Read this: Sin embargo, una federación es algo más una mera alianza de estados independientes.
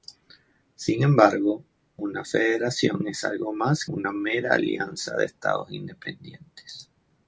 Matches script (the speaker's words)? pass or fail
pass